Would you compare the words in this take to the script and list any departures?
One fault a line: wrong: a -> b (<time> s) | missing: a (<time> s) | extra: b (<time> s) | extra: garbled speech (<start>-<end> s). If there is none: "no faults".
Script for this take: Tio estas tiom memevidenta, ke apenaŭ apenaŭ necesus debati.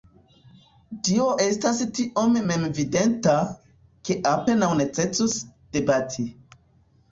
missing: apenaŭ (4.7 s)